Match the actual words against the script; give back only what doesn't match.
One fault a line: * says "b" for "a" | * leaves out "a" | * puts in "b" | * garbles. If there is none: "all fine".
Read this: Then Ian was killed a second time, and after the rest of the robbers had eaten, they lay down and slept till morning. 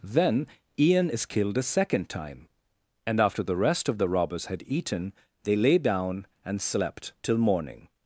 * says "is" for "was"